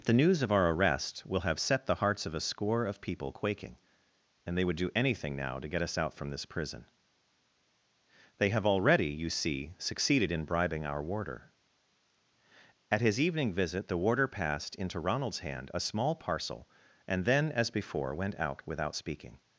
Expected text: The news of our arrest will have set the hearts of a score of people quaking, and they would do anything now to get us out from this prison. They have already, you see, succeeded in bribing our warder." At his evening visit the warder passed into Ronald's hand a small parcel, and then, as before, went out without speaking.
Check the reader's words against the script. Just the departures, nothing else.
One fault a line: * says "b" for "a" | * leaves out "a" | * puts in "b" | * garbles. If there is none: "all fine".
all fine